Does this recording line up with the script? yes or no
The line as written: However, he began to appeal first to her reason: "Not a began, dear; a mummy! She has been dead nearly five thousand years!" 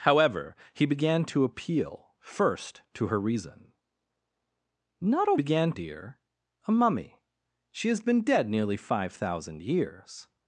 yes